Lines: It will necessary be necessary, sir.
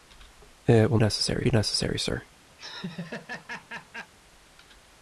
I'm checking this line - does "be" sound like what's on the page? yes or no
yes